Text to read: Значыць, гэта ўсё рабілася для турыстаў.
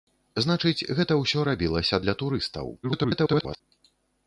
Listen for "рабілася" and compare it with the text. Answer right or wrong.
right